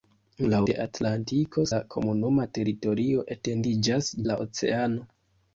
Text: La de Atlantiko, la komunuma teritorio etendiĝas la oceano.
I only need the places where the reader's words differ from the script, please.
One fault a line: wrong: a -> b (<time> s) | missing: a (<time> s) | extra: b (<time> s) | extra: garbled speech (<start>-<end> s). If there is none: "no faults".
no faults